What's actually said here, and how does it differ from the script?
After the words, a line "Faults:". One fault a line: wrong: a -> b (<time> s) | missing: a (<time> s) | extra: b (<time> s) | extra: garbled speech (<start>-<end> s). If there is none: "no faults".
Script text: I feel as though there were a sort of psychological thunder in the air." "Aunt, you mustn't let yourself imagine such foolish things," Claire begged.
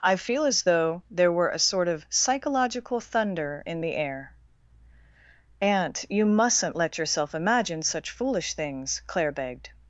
I feel as though there were a sort of psychological thunder in the air." "Aunt, you mustn't let yourself imagine such foolish things," Claire begged.
Faults:
no faults